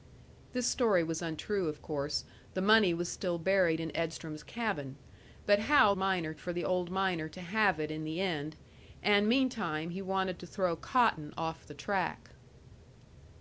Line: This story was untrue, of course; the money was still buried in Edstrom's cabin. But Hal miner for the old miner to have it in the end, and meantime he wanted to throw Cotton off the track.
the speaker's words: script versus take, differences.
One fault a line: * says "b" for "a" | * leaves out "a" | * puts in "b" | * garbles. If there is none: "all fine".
all fine